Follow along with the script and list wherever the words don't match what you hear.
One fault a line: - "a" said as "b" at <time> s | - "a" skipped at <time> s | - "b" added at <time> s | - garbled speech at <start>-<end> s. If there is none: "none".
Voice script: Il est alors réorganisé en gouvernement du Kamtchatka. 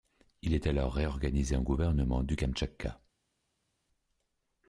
none